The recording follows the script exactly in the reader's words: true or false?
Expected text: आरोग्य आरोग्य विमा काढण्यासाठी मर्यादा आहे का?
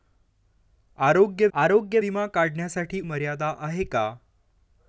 true